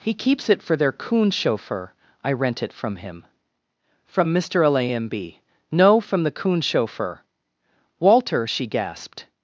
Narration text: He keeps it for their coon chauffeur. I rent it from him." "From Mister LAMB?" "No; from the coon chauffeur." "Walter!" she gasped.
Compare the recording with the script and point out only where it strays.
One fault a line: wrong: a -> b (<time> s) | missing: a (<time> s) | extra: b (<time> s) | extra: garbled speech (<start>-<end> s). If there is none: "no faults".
no faults